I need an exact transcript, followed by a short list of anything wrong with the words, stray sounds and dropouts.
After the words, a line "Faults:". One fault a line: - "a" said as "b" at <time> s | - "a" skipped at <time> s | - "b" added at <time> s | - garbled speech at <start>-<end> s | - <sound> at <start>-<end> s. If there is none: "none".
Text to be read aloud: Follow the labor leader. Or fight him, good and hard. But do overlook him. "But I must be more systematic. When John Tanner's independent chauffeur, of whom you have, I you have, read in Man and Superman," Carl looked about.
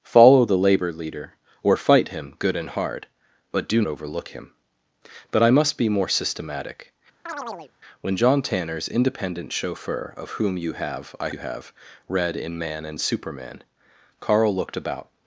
Follow the labor leader. Or fight him, good and hard. But do overlook him. "But I must be more systematic. When John Tanner's independent chauffeur, of whom you have, I you have, read in Man and Superman," Carl looked about.
Faults:
- chirp at 7.3-7.7 s